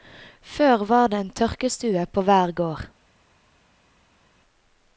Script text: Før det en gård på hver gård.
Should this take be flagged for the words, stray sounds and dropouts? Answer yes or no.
yes